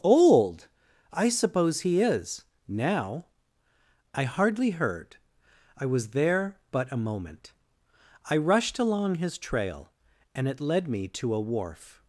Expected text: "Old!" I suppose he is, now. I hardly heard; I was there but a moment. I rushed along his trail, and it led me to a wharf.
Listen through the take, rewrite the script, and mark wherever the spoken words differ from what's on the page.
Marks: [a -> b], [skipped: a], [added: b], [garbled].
"Old!" I suppose he is, now. I hardly heard; I was there but a moment. I rushed along his trail, and it led me to a wharf.